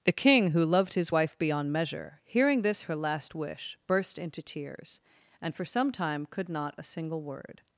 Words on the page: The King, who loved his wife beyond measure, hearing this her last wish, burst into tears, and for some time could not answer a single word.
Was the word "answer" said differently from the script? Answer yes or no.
yes